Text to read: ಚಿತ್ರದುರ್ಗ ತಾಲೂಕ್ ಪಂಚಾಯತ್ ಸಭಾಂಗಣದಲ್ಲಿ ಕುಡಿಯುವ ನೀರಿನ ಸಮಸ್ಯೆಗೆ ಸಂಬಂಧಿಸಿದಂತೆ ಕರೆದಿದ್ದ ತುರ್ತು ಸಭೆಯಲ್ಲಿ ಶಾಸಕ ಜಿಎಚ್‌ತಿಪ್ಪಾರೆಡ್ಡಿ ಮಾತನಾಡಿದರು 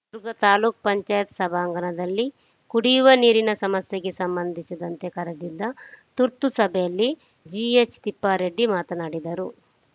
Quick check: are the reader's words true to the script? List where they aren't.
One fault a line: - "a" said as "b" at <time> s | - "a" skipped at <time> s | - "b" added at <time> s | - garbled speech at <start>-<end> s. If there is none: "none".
- "ಶಾಸಕ" skipped at 7.1 s